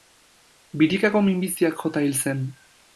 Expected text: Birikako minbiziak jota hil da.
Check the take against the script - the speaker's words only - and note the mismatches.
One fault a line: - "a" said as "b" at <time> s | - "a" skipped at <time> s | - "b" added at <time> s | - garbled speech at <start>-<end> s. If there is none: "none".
- "da" said as "zen" at 2.2 s